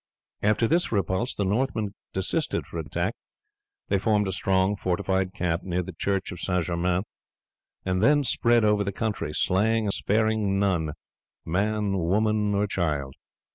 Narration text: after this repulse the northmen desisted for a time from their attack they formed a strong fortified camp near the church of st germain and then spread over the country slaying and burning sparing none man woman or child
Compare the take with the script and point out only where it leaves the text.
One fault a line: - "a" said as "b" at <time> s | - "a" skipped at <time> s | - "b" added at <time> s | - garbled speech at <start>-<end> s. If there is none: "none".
- "time from their" skipped at 2.8 s
- "and burning" skipped at 9.9 s